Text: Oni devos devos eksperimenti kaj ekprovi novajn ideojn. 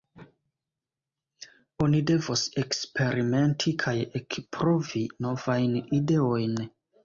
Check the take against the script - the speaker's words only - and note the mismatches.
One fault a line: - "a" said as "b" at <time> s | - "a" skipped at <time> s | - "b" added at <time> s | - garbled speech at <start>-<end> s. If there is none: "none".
- "devos" skipped at 2.5 s